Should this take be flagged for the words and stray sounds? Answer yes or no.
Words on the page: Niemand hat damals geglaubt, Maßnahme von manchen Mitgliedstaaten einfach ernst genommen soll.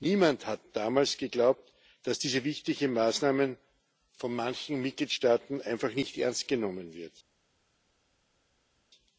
yes